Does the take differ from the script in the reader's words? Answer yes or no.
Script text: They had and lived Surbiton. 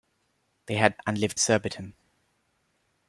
no